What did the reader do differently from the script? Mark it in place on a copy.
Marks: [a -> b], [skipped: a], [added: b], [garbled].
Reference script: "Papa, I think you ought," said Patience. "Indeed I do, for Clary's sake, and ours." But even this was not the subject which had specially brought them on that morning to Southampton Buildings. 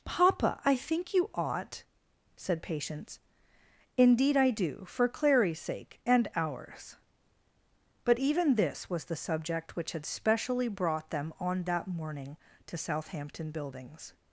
"Papa, I think you ought," said Patience. "Indeed I do, for Clary's sake, and ours." But even this was [skipped: not] the subject which had specially brought them on that morning to Southampton Buildings.